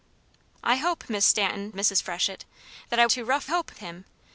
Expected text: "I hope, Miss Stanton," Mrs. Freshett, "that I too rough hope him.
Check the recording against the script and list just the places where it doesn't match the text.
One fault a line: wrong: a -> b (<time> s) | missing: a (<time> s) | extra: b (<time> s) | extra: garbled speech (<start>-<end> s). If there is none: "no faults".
no faults